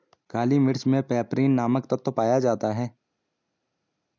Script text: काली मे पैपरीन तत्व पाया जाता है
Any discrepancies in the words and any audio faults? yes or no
yes